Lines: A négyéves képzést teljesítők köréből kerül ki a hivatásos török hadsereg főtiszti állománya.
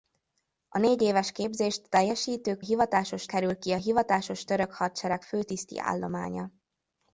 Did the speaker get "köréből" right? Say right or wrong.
wrong